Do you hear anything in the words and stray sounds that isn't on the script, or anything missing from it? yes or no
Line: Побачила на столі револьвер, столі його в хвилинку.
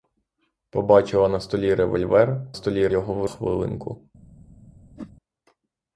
yes